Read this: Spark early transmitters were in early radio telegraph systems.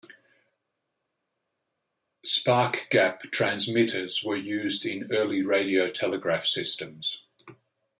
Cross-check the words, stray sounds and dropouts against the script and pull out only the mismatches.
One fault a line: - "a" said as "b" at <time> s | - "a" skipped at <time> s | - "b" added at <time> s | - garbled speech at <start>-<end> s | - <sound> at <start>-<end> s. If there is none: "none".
- "early" said as "gap" at 2.9 s
- "used" added at 4.4 s